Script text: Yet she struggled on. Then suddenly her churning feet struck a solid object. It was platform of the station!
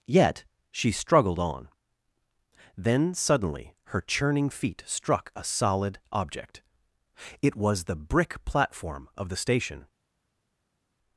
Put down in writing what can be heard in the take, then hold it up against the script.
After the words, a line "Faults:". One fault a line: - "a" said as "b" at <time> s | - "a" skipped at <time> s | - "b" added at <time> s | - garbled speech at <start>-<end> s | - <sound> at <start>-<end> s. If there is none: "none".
Yet she struggled on. Then suddenly her churning feet struck a solid object. It was the brick platform of the station!
Faults:
- "the brick" added at 7.8 s